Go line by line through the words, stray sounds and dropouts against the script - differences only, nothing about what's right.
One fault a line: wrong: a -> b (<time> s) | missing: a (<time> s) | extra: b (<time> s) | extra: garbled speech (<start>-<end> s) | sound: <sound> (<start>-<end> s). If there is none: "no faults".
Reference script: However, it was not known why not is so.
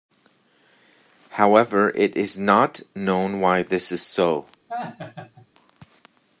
wrong: was -> is (2.2 s)
wrong: not -> this (3.6 s)
sound: laugh (4.7-5.5 s)